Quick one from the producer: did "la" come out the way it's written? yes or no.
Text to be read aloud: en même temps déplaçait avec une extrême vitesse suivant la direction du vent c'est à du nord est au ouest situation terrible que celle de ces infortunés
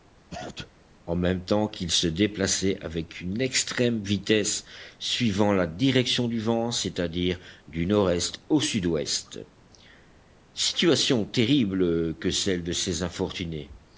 yes